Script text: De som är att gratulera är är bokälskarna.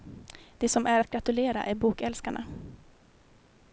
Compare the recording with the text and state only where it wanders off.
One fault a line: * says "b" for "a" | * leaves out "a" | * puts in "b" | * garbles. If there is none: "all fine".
* leaves out "är"